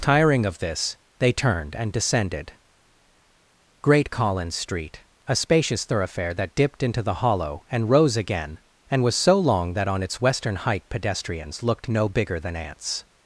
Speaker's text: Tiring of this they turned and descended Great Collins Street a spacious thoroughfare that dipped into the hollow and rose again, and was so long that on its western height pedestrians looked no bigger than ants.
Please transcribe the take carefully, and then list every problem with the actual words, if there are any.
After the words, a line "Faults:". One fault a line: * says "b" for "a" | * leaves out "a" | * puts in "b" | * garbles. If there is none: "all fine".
Tiring of this they turned and descended Great Collins Street a spacious thoroughfare that dipped into the hollow and rose again, and was so long that on its western height pedestrians looked no bigger than ants.
Faults:
all fine